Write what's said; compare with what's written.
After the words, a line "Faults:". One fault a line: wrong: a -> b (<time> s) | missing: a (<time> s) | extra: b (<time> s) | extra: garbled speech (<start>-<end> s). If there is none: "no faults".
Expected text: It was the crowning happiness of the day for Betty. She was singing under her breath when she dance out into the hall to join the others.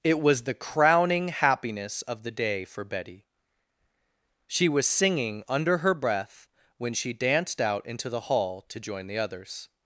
It was the crowning happiness of the day for Betty. She was singing under her breath when she danced out into the hall to join the others.
Faults:
wrong: dance -> danced (7.1 s)